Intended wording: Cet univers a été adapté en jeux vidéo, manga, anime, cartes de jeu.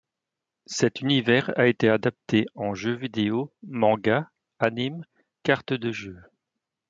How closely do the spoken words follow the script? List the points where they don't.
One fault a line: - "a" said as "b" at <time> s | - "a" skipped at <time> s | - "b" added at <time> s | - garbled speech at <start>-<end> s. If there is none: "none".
none